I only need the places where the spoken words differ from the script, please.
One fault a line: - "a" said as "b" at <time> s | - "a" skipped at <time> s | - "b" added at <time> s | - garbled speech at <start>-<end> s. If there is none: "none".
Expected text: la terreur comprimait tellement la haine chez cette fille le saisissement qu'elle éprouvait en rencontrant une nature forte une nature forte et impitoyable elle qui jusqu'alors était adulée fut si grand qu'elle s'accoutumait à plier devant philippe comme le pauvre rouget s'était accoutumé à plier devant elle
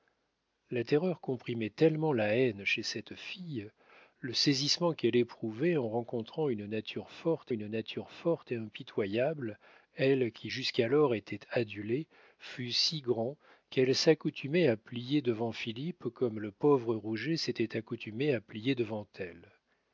none